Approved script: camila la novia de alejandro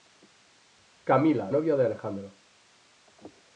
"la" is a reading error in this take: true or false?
true